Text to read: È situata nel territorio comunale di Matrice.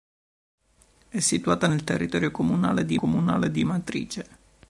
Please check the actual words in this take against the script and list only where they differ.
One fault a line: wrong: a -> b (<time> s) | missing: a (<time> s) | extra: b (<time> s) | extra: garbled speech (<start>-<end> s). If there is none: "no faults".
extra: comunale di (2.9 s)